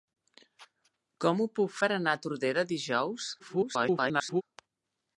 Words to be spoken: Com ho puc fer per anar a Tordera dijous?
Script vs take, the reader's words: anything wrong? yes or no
yes